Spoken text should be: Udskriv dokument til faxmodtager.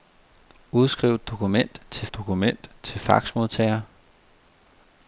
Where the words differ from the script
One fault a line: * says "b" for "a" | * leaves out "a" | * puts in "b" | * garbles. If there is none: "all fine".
* puts in "dokument til"